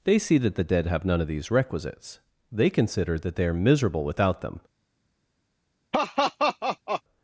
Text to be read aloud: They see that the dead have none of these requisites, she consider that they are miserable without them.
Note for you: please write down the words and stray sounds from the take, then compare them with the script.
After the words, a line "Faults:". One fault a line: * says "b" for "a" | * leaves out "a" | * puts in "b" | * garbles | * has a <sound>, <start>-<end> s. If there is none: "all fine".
They see that the dead have none of these requisites, they consider that they are miserable without them.
Faults:
* says "they" for "she"
* has a laugh, 5.9-7.0 s